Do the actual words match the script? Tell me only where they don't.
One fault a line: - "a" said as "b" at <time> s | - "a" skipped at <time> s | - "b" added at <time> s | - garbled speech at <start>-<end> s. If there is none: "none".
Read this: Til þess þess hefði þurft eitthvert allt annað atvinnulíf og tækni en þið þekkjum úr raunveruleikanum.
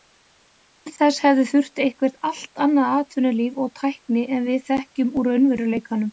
- "þess" skipped at 1.2 s
- "þið" said as "við" at 4.5 s